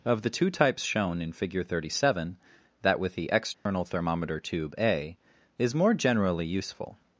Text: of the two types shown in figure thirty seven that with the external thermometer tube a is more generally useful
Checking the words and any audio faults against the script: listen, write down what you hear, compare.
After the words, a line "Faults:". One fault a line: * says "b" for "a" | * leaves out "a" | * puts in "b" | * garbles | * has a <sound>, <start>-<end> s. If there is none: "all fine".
of the two types shown in figure thirty seven that with the external thermometer tube a is more generally useful
Faults:
* has a dropout, 3.5-3.7 s